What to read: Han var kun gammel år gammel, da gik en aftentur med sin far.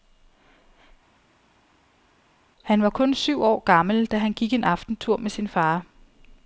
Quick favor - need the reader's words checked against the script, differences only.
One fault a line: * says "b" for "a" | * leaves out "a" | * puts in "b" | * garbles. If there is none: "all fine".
* says "syv" for "gammel"
* puts in "han"